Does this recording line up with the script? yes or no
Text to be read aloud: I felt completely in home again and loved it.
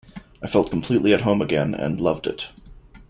no